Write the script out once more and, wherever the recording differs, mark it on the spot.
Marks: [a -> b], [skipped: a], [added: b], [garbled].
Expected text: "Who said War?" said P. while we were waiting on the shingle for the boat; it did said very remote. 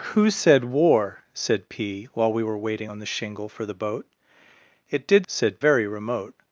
"Who said War?" said P. while we were waiting on the shingle for the boat; it did said very remote.